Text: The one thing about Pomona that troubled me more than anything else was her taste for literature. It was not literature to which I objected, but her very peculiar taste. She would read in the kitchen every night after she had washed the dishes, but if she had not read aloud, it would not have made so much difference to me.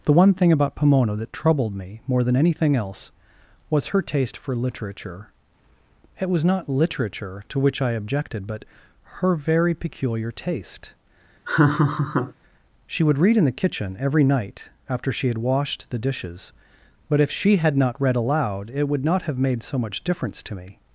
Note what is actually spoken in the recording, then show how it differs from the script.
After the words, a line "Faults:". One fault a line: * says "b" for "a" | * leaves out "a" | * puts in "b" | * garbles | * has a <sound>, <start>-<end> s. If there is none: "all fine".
The one thing about Pomona that troubled me more than anything else was her taste for literature. It was not literature to which I objected, but her very peculiar taste. She would read in the kitchen every night after she had washed the dishes, but if she had not read aloud, it would not have made so much difference to me.
Faults:
* has a laugh, 11.4-12.3 s